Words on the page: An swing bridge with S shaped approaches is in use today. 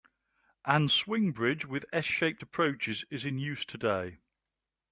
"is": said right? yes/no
yes